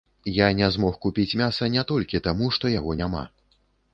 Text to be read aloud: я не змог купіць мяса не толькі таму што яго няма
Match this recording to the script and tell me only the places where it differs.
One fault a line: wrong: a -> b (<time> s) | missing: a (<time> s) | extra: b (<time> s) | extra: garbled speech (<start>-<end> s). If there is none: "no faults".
no faults